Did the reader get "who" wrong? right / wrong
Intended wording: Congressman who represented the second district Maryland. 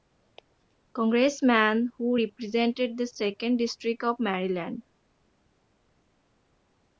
right